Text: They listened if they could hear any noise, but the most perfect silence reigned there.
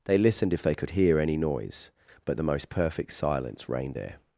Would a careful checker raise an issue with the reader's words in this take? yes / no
no